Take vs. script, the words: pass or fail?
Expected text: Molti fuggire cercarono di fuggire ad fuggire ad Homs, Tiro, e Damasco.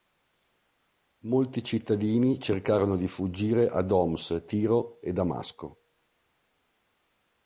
fail